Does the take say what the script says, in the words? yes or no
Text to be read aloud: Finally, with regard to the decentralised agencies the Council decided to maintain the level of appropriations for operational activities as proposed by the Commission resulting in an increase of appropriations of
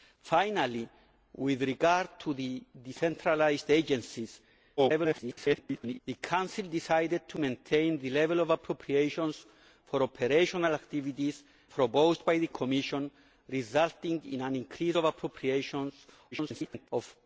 no